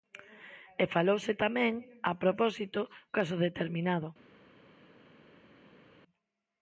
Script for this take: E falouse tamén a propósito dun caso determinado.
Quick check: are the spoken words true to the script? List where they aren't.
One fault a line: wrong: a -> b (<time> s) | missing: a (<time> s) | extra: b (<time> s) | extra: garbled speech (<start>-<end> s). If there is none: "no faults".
missing: dun (2.8 s)